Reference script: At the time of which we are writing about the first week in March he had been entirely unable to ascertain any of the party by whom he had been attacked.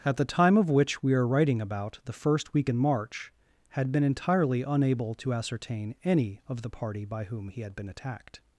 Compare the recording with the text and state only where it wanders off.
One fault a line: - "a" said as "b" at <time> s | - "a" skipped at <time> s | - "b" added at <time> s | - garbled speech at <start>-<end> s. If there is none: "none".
- "he" skipped at 3.3 s